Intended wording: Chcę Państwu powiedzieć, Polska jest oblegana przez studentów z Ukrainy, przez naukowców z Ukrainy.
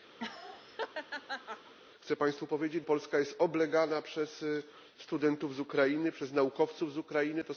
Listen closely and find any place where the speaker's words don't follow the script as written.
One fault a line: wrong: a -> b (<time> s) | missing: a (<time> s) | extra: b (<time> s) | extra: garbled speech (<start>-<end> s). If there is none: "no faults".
no faults